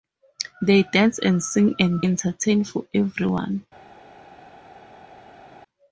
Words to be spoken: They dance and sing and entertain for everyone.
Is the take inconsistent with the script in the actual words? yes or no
no